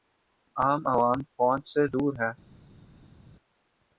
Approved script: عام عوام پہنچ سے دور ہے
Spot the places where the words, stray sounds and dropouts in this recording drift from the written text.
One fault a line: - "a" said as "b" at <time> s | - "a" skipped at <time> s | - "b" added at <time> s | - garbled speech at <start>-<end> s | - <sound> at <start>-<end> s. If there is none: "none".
none